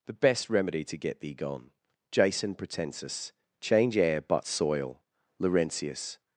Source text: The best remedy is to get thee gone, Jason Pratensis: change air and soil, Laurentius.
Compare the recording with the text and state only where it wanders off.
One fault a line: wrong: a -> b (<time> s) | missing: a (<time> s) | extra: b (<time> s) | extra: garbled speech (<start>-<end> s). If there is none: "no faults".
missing: is (0.8 s)
wrong: and -> but (4.2 s)